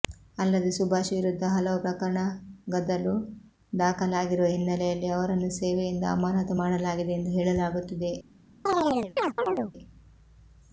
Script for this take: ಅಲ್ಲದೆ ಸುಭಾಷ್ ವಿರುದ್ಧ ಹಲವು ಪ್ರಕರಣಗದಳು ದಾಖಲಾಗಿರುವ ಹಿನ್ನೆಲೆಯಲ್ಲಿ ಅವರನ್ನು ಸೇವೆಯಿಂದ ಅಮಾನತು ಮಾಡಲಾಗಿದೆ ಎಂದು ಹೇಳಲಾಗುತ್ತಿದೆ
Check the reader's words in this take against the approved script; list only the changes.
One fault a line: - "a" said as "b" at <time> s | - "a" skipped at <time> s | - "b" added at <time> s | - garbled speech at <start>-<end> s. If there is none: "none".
none